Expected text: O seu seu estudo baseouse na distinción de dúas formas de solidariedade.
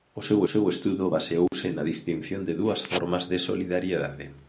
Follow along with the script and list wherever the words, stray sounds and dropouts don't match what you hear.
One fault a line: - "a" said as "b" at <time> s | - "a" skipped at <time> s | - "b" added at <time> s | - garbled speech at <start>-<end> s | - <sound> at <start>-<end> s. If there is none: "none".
- dropout at 1.5-1.5 s